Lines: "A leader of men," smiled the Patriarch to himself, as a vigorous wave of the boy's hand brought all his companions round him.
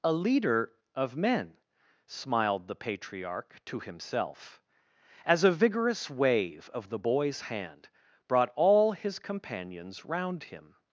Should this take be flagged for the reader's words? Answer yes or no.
no